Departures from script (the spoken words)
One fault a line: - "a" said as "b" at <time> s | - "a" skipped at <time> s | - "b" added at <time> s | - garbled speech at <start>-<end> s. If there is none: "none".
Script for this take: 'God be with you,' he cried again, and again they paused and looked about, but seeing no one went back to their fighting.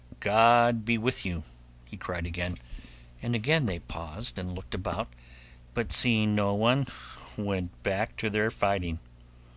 none